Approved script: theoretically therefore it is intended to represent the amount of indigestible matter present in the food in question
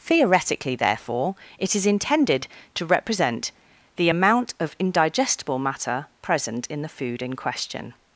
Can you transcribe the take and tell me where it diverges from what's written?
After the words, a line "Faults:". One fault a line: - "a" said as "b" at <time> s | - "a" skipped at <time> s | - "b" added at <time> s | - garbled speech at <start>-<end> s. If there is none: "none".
theoretically therefore it is intended to represent the amount of indigestible matter present in the food in question
Faults:
none